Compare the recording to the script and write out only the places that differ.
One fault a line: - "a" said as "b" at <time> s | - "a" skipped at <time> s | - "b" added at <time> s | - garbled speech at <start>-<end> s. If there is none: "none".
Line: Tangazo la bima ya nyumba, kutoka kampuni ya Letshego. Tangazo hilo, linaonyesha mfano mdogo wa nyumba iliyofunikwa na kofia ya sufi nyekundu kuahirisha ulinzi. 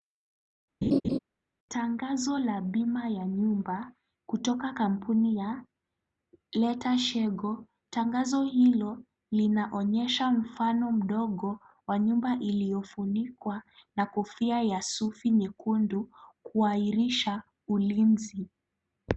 none